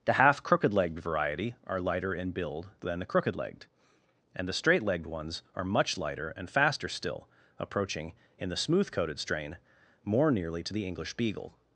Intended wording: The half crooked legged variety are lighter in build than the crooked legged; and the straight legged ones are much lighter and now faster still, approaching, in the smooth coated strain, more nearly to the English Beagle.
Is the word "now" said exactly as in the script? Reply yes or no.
no